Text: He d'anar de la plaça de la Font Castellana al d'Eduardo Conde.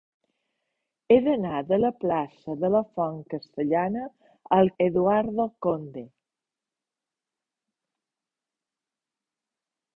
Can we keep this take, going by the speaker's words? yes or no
yes